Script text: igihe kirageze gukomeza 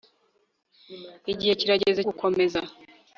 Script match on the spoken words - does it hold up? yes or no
yes